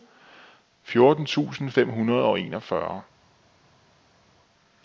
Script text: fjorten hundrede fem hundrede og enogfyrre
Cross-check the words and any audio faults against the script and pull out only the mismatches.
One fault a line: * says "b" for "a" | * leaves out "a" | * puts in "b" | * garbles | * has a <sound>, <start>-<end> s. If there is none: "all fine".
* says "tusind" for "hundrede"